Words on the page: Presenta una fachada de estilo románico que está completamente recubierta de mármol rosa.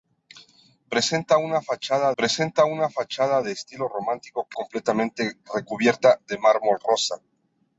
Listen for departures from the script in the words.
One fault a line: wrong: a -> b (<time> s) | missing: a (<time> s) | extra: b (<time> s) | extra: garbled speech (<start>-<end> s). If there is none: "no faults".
extra: presenta una fachada (2.2 s)
missing: está (4.6 s)